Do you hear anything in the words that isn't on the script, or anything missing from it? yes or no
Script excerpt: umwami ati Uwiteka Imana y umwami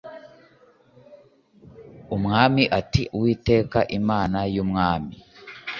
no